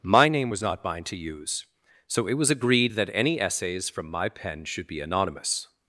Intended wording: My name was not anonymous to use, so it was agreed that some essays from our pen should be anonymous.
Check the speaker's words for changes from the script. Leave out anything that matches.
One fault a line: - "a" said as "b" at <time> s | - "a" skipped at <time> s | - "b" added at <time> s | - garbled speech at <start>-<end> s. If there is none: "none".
- "anonymous" said as "mine" at 0.8 s
- "some" said as "any" at 3.1 s
- "our" said as "my" at 4.1 s